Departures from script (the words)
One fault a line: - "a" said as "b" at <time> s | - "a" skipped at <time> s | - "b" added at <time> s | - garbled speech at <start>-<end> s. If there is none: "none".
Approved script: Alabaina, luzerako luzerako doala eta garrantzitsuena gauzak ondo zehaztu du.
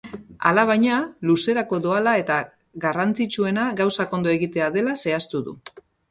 - "luzerako" skipped at 1.8 s
- "egitea dela" added at 4.4 s